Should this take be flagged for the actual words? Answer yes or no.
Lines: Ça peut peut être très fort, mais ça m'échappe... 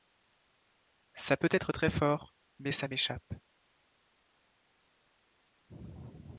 yes